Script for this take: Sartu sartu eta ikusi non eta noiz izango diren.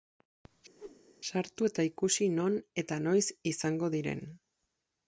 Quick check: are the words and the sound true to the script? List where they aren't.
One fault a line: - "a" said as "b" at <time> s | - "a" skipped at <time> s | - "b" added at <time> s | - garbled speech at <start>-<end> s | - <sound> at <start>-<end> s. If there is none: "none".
- whoosh at 0.8-1.0 s
- "sartu" skipped at 1.7 s